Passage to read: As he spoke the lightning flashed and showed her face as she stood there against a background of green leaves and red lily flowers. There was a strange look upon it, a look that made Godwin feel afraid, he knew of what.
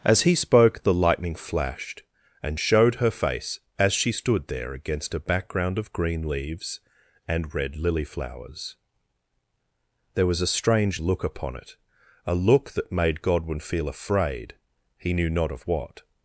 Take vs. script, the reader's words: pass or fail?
fail